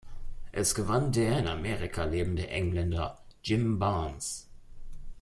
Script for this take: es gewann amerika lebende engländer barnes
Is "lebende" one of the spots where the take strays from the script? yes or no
no